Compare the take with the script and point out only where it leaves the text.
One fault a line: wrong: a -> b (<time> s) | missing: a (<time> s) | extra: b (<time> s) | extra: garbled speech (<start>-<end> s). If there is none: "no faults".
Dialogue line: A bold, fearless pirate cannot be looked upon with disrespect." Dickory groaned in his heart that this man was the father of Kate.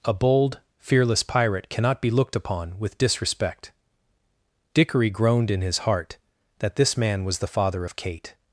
no faults